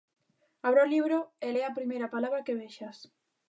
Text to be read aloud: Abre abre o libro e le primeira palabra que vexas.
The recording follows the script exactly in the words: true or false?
false